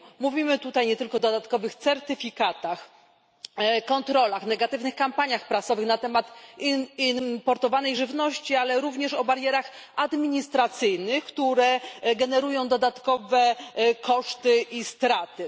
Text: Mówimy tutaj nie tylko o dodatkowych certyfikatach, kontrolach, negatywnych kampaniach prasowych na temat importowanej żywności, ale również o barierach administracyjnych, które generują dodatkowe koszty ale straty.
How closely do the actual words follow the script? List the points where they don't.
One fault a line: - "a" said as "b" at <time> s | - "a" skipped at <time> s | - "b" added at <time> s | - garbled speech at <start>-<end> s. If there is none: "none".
- "ale" said as "i" at 14.6 s